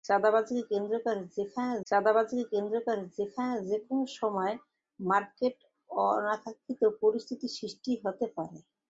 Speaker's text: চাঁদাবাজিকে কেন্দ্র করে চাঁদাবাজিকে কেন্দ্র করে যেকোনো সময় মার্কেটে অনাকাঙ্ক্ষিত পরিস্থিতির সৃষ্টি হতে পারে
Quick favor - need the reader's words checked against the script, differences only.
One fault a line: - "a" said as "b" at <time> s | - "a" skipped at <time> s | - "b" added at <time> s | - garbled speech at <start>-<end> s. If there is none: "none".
none